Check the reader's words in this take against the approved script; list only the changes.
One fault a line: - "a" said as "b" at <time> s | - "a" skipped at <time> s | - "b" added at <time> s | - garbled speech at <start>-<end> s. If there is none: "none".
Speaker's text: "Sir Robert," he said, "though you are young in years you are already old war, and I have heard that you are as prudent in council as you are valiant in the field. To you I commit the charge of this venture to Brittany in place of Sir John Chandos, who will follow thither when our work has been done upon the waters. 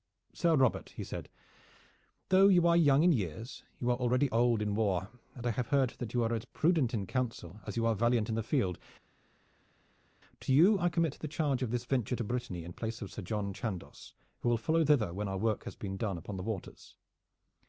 - "in" added at 4.6 s